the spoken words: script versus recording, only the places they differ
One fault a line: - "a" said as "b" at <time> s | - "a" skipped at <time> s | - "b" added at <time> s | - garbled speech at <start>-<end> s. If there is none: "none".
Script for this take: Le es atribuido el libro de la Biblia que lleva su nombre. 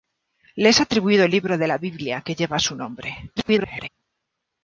- garbled speech at 3.4-3.9 s